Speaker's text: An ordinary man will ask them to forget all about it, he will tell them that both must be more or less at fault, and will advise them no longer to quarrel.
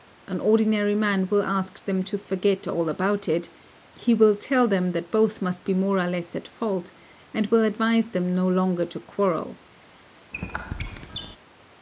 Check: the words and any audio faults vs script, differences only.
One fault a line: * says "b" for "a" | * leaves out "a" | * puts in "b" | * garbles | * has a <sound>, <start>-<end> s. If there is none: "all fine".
* has a squeak, 10.3-11.4 s